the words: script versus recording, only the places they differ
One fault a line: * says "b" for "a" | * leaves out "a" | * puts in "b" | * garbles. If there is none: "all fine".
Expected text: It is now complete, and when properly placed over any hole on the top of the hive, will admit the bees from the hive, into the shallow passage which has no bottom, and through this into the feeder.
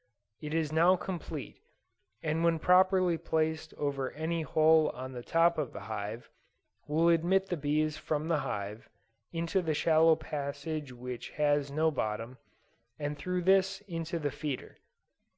all fine